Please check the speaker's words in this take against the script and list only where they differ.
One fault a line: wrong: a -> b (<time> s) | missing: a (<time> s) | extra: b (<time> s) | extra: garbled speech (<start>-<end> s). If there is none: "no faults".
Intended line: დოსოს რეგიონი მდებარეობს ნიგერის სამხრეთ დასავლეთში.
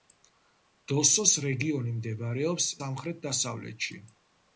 missing: ნიგერის (2.7 s)